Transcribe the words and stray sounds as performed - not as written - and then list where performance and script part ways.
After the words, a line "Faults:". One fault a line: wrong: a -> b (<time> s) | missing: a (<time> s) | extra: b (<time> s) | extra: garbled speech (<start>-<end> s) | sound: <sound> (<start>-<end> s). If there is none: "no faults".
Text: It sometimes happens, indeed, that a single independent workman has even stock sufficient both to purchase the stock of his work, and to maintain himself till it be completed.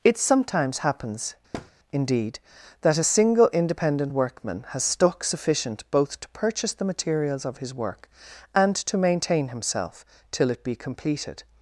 It sometimes happens, indeed, that a single independent workman has stock sufficient both to purchase the materials of his work, and to maintain himself till it be completed.
Faults:
sound: thud (1.5-1.7 s)
missing: even (4.8 s)
wrong: stock -> materials (6.8 s)